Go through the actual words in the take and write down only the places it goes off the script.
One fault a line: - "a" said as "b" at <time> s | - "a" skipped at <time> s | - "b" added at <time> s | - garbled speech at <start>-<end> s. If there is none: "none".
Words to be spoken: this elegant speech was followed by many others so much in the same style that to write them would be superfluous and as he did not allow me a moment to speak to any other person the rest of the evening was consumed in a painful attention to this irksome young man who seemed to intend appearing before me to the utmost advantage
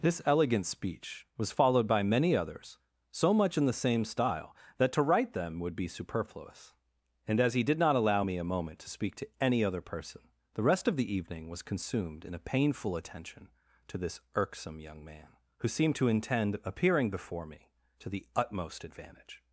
none